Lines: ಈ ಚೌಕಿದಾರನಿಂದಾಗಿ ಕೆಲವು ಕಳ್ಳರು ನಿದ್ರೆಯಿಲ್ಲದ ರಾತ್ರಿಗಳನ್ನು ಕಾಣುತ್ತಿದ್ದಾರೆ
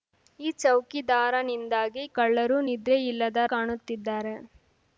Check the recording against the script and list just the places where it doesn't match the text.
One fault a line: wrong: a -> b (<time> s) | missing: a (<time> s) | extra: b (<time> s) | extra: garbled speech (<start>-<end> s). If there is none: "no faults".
missing: ಕೆಲವು (2.0 s)
missing: ರಾತ್ರಿಗಳನ್ನು (3.4 s)